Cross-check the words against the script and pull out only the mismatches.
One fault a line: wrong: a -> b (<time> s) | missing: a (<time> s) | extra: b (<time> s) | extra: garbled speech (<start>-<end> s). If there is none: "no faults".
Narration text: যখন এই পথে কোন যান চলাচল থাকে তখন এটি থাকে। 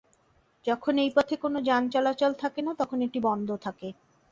extra: না (2.6 s)
extra: বন্ধ (3.3 s)